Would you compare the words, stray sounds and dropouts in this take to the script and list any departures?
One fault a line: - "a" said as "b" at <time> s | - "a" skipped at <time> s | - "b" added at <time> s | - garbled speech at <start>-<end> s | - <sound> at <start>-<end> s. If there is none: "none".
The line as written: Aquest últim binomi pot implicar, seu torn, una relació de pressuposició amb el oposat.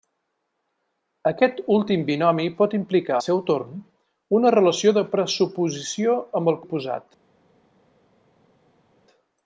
none